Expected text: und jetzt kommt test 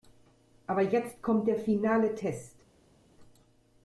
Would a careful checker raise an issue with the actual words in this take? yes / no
yes